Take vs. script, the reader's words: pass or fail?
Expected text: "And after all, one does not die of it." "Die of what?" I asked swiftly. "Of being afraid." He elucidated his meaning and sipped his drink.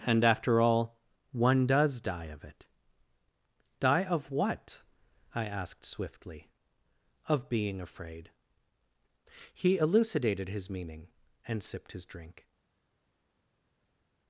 fail